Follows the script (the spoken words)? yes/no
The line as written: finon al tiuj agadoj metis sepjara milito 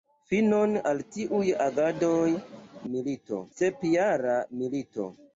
no